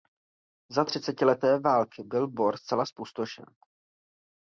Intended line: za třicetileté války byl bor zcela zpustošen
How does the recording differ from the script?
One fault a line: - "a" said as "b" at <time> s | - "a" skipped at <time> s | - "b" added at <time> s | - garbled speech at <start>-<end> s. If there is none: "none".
none